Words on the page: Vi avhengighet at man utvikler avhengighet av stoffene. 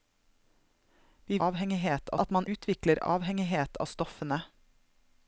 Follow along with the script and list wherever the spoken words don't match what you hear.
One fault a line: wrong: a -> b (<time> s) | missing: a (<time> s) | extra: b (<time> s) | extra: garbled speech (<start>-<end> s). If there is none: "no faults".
no faults